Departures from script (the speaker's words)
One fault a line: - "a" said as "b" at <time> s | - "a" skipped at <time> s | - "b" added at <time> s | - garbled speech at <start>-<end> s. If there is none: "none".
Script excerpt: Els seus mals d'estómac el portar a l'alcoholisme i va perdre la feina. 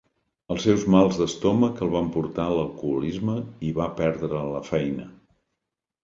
- "van" added at 1.9 s